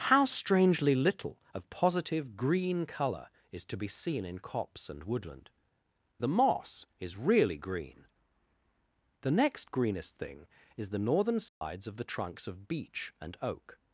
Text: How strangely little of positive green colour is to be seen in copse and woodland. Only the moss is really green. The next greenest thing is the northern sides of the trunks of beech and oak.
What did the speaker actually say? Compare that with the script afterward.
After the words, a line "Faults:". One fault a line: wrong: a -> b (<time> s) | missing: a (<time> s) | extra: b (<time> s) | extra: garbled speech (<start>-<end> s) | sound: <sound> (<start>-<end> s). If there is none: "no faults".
How strangely little of positive green colour is to be seen in copse and woodland. The moss is really green. The next greenest thing is the northern sides of the trunks of beech and oak.
Faults:
missing: Only (5.5 s)
sound: dropout (11.5-11.6 s)